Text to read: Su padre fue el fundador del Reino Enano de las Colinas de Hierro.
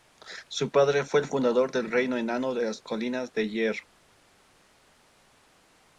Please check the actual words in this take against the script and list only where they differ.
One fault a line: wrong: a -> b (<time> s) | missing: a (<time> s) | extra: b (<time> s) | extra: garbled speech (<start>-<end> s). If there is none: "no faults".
no faults